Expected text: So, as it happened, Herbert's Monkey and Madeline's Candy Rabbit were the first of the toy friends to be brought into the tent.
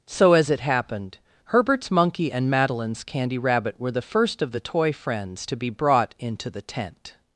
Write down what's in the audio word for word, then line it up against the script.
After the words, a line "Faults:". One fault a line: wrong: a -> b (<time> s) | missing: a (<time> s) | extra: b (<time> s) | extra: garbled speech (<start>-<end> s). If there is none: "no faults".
So, as it happened, Herbert's Monkey and Madeline's Candy Rabbit were the first of the toy friends to be brought into the tent.
Faults:
no faults